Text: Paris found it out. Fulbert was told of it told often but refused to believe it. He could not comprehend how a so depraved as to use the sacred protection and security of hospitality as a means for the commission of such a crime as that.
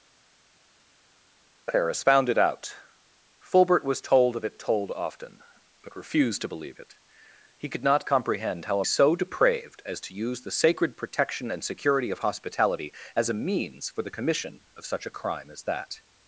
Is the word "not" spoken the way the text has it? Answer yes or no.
yes